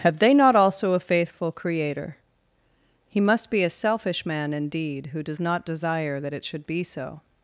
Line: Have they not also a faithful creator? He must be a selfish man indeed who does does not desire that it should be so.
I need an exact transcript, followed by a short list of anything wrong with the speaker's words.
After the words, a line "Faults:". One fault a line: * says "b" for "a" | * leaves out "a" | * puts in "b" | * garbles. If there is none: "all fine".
Have they not also a faithful creator? He must be a selfish man indeed who does not desire that it should be so.
Faults:
* leaves out "does"